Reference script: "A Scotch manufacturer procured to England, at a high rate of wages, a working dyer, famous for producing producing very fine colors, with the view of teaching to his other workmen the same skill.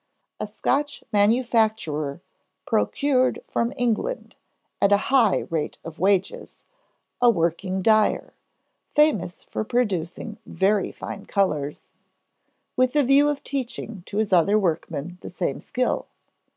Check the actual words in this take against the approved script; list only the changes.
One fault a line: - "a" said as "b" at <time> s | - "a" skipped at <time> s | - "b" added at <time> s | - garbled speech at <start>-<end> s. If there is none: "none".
- "to" said as "from" at 3.5 s
- "producing" skipped at 10.4 s